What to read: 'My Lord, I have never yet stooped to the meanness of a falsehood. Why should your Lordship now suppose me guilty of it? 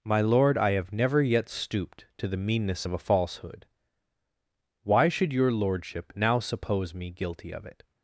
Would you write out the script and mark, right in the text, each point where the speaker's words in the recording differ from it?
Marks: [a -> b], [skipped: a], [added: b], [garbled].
'My Lord, I have never yet stooped to the meanness of a falsehood. Why should your Lordship now suppose me guilty of it?